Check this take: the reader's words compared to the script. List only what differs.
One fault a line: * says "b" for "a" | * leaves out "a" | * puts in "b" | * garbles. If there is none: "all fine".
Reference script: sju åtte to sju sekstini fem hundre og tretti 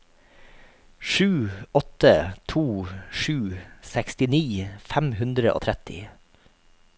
all fine